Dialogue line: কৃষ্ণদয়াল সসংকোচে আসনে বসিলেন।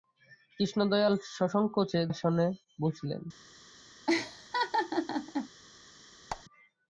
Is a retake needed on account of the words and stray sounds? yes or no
yes